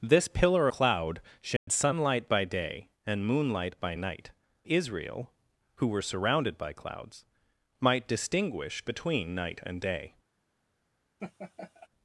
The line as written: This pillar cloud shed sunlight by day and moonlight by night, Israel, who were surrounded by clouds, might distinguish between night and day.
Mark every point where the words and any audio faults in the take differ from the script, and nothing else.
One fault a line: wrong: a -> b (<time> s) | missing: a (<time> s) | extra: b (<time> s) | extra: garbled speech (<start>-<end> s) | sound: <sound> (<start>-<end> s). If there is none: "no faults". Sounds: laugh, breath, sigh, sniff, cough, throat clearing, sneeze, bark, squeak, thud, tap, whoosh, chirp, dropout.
sound: dropout (1.6-1.7 s)
sound: laugh (11.2-11.9 s)